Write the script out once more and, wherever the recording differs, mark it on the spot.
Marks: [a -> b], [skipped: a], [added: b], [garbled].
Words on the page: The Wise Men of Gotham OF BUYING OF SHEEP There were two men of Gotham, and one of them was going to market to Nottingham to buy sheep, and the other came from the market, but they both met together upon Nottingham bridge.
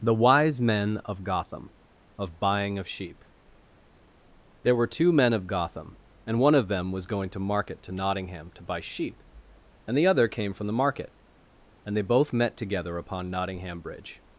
The Wise Men of Gotham OF BUYING OF SHEEP There were two men of Gotham, and one of them was going to market to Nottingham to buy sheep, and the other came from the market, [but -> and] they both met together upon Nottingham bridge.